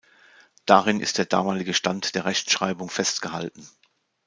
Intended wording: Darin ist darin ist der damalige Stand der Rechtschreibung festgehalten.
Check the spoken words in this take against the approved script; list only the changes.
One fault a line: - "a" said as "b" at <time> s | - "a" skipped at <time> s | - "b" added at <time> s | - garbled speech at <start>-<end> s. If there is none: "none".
- "darin ist" skipped at 1.2 s